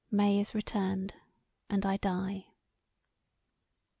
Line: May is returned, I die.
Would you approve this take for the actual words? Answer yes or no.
no